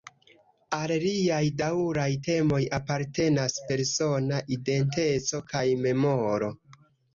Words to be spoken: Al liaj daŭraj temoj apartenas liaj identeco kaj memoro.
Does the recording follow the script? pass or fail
fail